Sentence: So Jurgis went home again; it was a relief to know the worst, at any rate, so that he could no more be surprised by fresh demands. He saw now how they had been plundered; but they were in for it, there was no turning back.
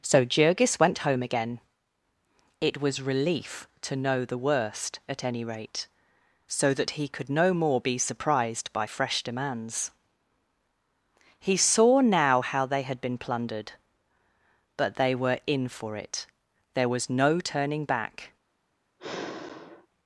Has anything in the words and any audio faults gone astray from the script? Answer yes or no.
yes